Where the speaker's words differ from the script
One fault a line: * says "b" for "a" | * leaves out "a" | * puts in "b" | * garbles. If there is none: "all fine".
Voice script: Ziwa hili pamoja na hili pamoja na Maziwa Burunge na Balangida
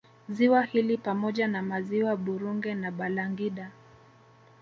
* leaves out "hili pamoja na"